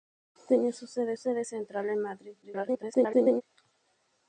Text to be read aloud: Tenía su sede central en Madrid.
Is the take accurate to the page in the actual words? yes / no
no